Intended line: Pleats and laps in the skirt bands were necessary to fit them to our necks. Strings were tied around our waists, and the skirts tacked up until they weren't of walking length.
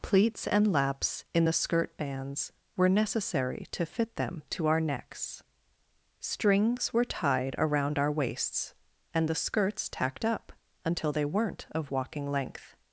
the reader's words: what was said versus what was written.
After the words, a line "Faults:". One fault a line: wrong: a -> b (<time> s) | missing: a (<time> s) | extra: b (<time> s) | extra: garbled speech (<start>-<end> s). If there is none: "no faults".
Pleats and laps in the skirt bands were necessary to fit them to our necks. Strings were tied around our waists, and the skirts tacked up until they weren't of walking length.
Faults:
no faults